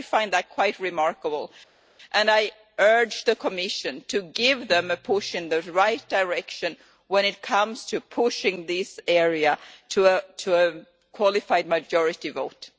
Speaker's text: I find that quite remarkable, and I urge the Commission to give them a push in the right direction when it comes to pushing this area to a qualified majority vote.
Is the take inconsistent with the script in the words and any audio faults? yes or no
no